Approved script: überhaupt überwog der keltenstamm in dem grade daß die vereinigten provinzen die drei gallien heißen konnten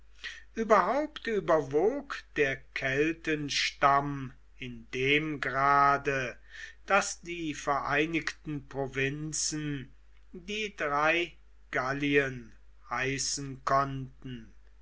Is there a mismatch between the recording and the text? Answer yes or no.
no